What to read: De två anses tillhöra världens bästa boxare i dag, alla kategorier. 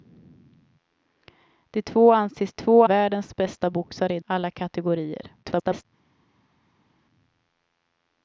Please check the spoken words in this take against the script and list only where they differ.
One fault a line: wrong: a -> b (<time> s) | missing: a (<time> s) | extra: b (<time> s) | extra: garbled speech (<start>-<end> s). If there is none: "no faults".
wrong: tillhöra -> två (2.5 s)
missing: dag (4.2 s)
extra: garbled speech (5.4-5.9 s)